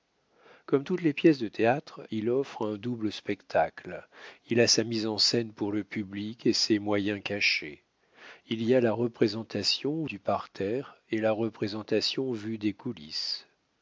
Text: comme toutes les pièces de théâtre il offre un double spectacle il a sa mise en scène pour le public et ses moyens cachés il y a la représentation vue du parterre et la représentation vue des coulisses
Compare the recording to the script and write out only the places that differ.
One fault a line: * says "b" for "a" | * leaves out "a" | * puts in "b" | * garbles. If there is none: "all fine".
* leaves out "vue"